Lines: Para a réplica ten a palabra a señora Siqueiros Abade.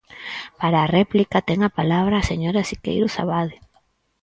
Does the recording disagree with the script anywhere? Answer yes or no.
no